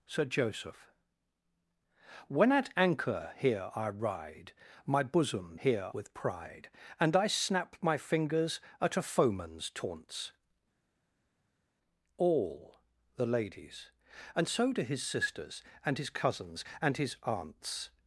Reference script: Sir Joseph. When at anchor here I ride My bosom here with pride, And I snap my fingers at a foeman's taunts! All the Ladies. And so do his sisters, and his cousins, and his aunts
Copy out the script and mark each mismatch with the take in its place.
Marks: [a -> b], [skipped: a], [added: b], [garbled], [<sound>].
Sir Joseph. When at anchor here I ride My bosom here with pride, And I snap my fingers at a foeman's taunts! All the Ladies. And so do his sisters, and his cousins, and his aunts